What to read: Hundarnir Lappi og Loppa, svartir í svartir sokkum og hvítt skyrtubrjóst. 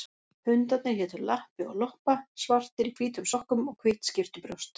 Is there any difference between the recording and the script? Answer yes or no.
yes